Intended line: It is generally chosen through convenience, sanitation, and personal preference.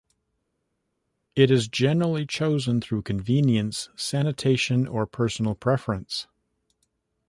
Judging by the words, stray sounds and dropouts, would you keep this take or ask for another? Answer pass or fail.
fail